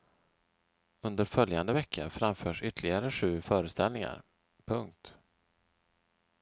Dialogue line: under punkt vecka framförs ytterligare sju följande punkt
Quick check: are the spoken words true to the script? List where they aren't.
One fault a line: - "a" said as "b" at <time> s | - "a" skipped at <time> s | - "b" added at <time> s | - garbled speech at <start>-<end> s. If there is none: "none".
- "punkt" said as "följande" at 1.2 s
- "följande" said as "föreställningar" at 3.4 s